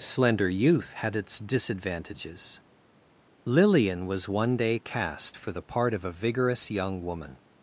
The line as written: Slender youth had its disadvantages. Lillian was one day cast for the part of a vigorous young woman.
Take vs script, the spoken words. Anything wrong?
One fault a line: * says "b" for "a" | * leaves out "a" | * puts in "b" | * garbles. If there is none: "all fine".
all fine